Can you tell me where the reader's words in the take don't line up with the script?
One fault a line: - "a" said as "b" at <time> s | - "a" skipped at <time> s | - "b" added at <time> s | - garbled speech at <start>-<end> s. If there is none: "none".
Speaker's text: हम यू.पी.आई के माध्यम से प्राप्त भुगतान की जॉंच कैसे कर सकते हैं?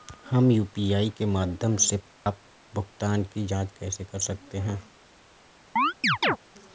none